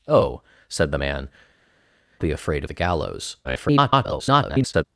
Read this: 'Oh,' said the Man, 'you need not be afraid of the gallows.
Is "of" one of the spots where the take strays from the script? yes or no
yes